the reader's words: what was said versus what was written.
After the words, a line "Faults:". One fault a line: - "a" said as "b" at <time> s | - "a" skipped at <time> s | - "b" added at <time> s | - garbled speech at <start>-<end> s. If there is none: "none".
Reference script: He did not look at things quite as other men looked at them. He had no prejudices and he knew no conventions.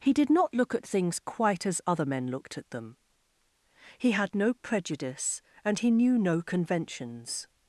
He did not look at things quite as other men looked at them. He had no prejudice and he knew no conventions.
Faults:
- "prejudices" said as "prejudice" at 4.5 s